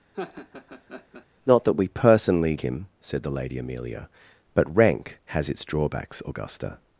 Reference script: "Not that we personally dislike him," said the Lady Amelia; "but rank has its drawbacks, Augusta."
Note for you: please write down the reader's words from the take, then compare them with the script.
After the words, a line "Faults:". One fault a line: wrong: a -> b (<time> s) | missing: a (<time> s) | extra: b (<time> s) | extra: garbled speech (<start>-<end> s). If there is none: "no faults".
"Not that we personally him," said the Lady Amelia; "but rank has its drawbacks, Augusta."
Faults:
missing: dislike (2.6 s)